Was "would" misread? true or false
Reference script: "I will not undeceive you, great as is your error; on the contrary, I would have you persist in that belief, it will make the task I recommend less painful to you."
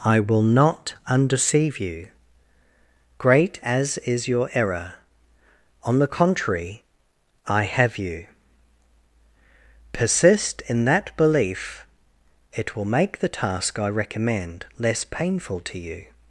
true